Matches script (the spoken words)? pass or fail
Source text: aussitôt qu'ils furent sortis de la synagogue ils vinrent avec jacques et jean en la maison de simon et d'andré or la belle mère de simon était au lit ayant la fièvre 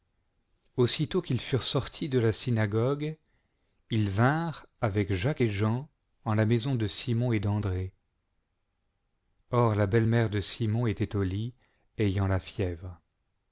pass